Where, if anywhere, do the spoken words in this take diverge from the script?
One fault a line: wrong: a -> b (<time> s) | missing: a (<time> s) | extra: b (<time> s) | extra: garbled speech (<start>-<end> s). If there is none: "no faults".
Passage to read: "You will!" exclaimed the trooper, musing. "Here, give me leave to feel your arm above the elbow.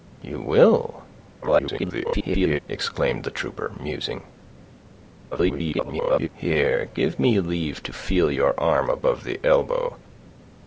extra: garbled speech (1.4-2.6 s)
extra: garbled speech (5.3-6.3 s)